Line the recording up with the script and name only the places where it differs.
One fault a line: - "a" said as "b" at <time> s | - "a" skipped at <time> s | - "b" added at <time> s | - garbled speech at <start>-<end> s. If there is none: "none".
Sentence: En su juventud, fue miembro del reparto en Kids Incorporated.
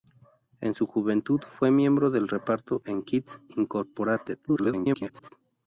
- garbled speech at 4.5-5.3 s